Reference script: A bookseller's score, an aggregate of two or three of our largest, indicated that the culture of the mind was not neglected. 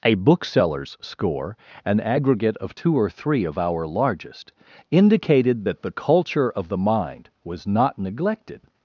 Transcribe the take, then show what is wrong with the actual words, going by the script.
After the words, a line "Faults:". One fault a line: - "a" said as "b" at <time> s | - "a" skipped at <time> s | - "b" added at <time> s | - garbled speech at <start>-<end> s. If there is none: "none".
A bookseller's score, an aggregate of two or three of our largest, indicated that the culture of the mind was not neglected.
Faults:
none